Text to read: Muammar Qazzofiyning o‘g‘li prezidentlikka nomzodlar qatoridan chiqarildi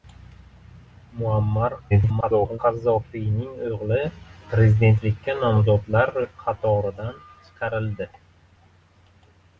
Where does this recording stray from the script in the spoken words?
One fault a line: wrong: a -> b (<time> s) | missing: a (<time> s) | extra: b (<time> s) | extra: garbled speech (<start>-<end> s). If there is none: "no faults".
extra: garbled speech (1.9-2.6 s)